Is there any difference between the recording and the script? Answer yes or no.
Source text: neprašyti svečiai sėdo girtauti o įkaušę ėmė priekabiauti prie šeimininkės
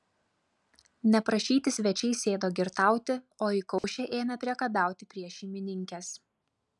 no